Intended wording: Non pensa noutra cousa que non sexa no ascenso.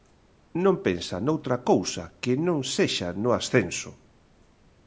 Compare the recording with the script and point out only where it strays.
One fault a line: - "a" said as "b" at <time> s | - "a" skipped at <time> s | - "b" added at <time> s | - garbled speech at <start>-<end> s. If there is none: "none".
none